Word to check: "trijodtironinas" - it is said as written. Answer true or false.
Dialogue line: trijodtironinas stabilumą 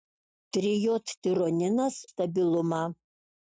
true